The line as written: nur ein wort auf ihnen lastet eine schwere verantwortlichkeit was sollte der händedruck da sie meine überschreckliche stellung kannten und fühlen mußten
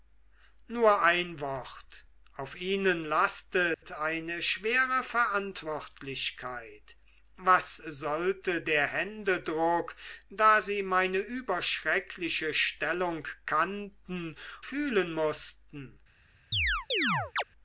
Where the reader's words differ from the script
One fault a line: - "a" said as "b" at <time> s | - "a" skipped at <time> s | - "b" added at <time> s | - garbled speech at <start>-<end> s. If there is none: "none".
- "und" skipped at 14.3 s